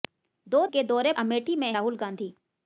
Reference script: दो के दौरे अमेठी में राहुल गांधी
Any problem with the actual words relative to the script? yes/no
no